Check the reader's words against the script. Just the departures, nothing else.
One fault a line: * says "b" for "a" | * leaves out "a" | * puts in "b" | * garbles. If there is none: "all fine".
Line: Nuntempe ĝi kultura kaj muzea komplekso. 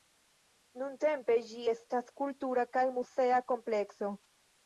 * puts in "estas"